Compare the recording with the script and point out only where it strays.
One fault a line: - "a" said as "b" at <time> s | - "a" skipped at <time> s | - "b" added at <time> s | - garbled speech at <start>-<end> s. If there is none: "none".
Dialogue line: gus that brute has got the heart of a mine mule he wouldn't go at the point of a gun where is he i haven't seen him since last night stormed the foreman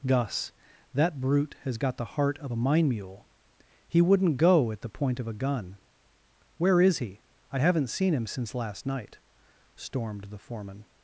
none